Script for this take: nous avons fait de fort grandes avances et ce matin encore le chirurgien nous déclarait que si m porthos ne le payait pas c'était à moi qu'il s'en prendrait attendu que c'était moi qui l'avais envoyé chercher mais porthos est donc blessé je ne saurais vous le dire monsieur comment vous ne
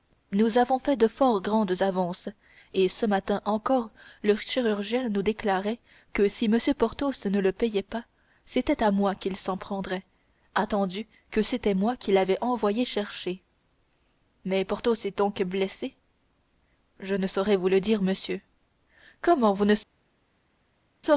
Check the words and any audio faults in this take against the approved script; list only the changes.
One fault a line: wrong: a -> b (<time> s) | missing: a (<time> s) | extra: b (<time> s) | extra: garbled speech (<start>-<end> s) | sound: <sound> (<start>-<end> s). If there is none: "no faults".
no faults